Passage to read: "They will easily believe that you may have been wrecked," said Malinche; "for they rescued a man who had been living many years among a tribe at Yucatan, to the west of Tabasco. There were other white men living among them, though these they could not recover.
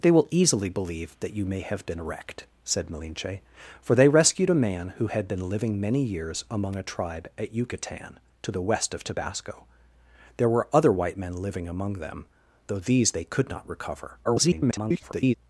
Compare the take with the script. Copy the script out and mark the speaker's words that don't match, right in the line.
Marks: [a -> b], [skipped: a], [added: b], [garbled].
"They will easily believe that you may have been wrecked," said Malinche; "for they rescued a man who had been living many years among a tribe at Yucatan, to the west of Tabasco. There were other white men living among them, though these they could not recover. [garbled]